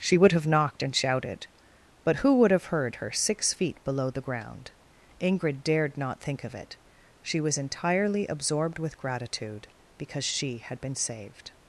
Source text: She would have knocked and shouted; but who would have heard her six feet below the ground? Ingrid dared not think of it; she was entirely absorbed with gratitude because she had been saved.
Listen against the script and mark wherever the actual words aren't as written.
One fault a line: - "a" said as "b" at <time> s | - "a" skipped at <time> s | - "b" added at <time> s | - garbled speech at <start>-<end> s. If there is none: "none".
none